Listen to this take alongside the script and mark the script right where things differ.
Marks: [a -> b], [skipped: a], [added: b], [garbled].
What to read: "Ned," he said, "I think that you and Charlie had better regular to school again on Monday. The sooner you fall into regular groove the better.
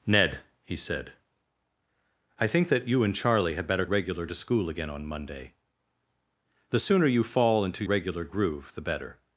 "Ned," he said, "I think that you and Charlie had better regular to school again on Monday. The sooner you fall into regular groove the better.